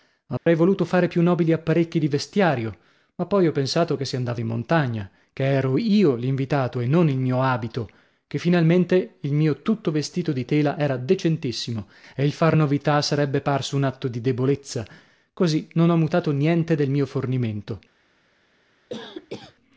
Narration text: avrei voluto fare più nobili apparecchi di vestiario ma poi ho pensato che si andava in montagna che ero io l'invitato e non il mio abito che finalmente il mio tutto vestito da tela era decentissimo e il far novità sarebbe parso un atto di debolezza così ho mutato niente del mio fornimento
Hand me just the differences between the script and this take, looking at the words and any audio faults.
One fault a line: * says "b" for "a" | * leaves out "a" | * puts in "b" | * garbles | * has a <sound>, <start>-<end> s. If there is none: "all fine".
* has a dropout, 0.4-0.5 s
* says "di" for "da"
* puts in "non"
* has a cough, 18.9-19.6 s